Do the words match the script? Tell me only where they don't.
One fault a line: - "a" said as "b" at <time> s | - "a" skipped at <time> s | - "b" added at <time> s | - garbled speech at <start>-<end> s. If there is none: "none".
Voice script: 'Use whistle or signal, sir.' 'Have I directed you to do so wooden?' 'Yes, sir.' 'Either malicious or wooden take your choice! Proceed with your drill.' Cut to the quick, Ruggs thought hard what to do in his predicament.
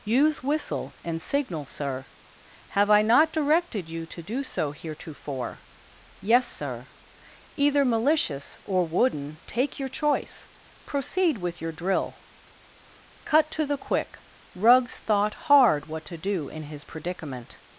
- "or" said as "and" at 1.0 s
- "not" added at 3.0 s
- "wooden" said as "heretofore" at 4.7 s